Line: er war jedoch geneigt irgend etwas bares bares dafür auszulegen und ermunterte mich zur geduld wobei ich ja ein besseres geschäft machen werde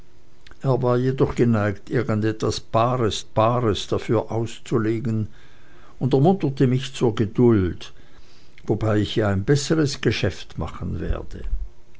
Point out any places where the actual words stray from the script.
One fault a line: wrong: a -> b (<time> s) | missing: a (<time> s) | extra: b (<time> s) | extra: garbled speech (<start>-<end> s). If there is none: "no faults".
no faults